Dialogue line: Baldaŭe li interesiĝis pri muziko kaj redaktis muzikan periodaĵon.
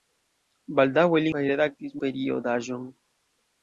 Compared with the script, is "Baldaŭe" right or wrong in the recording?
right